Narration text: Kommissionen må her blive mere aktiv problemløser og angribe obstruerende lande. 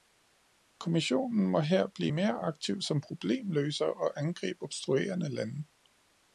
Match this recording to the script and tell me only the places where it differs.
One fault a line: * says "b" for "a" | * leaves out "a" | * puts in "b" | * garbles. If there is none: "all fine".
* puts in "som"